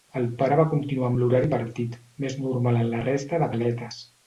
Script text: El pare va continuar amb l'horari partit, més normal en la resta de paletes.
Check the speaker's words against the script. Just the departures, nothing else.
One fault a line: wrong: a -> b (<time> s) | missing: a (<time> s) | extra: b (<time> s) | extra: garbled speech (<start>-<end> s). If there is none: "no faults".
no faults